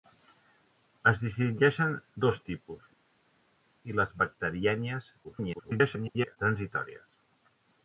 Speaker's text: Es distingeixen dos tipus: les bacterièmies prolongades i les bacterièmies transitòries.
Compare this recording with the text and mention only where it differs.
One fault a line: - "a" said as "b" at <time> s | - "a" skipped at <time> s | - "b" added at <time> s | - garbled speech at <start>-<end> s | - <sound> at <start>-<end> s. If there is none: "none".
- "les bacterièmies prolongades" skipped at 2.9 s
- garbled speech at 5.2-6.4 s